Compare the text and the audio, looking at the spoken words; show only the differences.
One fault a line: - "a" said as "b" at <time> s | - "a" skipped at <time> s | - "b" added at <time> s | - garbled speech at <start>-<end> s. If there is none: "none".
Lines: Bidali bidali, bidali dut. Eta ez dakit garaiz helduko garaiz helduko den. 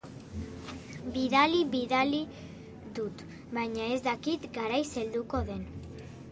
- "bidali" skipped at 2.2 s
- "Eta" said as "Baina" at 3.5 s
- "garaiz helduko" skipped at 5.4 s